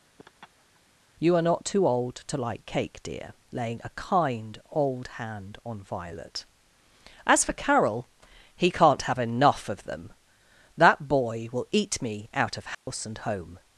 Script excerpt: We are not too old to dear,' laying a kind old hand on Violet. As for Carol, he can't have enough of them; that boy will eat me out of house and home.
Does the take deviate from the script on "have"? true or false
false